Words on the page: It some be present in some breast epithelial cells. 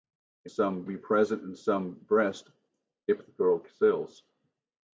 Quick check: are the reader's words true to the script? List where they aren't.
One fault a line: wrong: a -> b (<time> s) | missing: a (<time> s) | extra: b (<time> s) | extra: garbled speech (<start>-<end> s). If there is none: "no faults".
no faults